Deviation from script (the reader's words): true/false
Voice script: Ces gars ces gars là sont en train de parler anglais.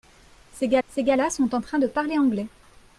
false